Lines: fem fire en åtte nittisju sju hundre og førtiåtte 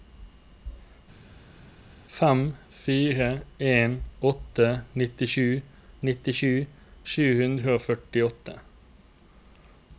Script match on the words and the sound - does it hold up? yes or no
no